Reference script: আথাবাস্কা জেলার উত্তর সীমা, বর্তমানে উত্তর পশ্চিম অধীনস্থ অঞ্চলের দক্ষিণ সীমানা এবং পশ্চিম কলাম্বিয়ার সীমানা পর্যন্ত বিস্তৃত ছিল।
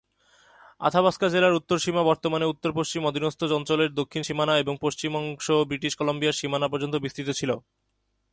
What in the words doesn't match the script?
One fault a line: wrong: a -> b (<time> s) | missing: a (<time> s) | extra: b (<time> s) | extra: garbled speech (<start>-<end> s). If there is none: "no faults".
extra: অংশ ব্রিটিশ (5.2 s)